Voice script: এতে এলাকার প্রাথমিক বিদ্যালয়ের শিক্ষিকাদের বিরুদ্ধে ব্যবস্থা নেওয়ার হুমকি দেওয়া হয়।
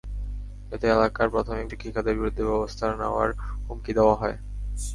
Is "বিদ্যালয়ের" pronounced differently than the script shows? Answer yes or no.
yes